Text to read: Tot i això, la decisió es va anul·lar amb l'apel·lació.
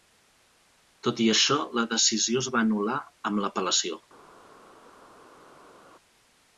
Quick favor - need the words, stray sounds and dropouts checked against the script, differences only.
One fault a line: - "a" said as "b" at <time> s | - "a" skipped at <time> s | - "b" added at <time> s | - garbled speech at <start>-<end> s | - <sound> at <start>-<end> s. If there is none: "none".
none